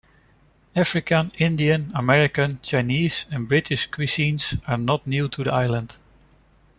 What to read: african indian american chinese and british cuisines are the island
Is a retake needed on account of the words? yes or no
yes